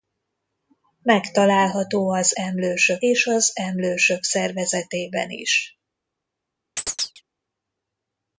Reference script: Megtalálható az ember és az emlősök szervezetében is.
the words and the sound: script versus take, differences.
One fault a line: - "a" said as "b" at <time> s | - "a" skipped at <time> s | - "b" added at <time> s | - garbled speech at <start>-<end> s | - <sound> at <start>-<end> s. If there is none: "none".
- "ember" said as "emlősök" at 2.3 s
- chirp at 6.8-7.2 s